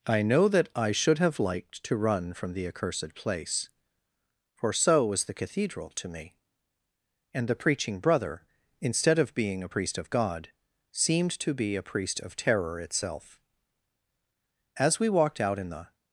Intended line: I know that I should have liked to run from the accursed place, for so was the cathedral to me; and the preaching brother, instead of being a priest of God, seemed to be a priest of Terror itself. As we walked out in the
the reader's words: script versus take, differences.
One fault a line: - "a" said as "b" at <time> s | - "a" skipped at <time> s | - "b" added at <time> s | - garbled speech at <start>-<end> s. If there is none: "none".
none